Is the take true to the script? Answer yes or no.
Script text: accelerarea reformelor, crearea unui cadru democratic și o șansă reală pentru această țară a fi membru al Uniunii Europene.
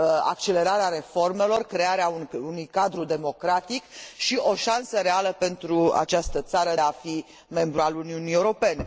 yes